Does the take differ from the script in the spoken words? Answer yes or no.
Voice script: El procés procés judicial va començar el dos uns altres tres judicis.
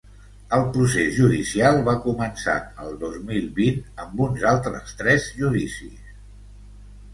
yes